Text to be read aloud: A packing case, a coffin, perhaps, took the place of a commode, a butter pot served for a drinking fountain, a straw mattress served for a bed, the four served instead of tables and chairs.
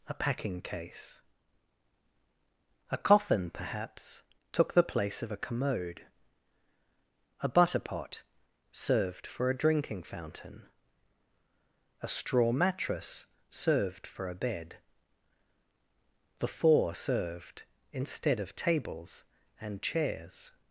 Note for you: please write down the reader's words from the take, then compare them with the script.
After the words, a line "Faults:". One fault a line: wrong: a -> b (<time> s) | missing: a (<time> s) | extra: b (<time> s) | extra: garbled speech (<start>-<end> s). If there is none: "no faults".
A packing case, a coffin, perhaps, took the place of a commode, a butter pot served for a drinking fountain, a straw mattress served for a bed, the four served instead of tables and chairs.
Faults:
no faults